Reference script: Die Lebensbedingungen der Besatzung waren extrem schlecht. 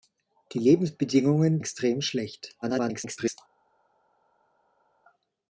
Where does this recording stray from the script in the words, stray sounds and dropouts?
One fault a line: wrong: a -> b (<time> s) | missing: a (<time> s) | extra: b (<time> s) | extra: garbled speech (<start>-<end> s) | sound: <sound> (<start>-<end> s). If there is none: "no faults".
missing: der Besatzung waren (1.6 s)
extra: garbled speech (2.6-3.4 s)